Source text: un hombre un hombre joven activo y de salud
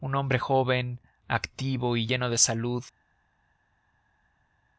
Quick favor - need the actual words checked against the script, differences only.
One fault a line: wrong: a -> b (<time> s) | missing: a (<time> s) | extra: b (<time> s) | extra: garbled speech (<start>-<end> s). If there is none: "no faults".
missing: un hombre (0.4 s)
extra: lleno (2.0 s)